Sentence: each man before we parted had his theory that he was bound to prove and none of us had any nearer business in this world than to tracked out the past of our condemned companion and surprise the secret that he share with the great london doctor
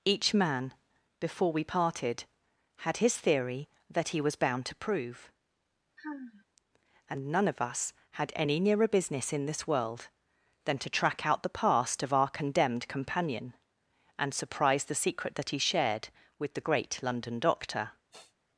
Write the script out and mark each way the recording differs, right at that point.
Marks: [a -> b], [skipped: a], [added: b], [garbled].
each man before we parted had his theory that he was bound to prove and none of us had any nearer business in this world than to [tracked -> track] out the past of our condemned companion and surprise the secret that he [share -> shared] with the great london doctor